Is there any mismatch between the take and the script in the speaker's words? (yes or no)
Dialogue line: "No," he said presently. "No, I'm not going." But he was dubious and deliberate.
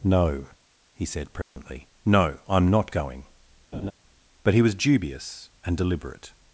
no